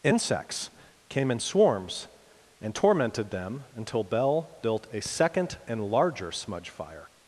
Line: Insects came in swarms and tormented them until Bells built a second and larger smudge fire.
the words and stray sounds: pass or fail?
fail